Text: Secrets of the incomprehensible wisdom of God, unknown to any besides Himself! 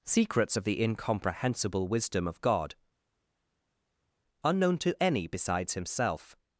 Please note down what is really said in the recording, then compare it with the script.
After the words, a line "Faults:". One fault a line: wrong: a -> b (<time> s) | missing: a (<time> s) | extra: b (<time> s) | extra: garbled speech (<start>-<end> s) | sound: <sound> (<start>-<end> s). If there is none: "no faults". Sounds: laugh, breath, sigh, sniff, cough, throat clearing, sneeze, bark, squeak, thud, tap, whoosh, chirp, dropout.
Secrets of the incomprehensible wisdom of God, unknown to any besides Himself!
Faults:
no faults